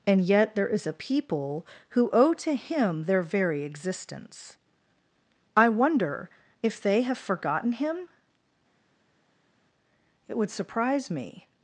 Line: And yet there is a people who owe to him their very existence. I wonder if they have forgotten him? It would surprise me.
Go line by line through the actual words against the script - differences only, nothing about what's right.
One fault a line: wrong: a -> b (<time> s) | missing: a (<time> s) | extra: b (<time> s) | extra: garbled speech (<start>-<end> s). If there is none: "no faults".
no faults